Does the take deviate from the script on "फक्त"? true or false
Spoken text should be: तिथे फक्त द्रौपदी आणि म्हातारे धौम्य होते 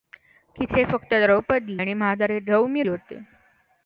false